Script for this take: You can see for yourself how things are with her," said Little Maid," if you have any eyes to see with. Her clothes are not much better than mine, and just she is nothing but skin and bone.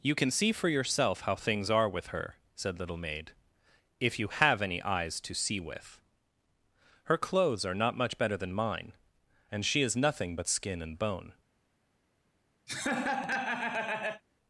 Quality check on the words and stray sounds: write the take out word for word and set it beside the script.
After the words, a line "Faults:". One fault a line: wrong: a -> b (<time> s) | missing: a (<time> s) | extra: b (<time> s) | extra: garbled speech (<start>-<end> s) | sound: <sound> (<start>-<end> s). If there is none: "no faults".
You can see for yourself how things are with her," said Little Maid," if you have any eyes to see with. Her clothes are not much better than mine, and she is nothing but skin and bone.
Faults:
missing: just (9.7 s)
sound: laugh (12.7-14.2 s)